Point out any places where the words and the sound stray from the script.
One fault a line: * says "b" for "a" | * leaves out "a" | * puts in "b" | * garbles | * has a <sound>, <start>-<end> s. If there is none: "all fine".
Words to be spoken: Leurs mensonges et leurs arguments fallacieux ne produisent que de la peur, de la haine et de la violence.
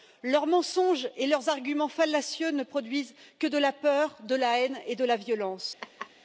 * has a laugh, 5.8-6.1 s